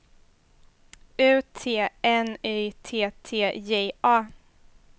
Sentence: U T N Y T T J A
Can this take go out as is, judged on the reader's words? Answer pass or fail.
pass